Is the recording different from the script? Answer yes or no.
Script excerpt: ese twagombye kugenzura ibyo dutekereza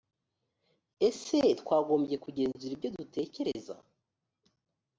no